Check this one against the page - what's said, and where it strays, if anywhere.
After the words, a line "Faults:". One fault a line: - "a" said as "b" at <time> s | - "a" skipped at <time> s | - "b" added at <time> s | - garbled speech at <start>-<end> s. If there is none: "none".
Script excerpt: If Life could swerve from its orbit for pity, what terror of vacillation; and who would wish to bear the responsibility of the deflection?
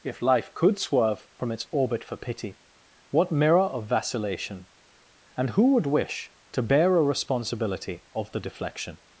If Life could swerve from its orbit for pity, what mirror of vacillation; and who would wish to bear a responsibility of the deflection?
Faults:
- "terror" said as "mirror" at 3.3 s
- "the" said as "a" at 7.0 s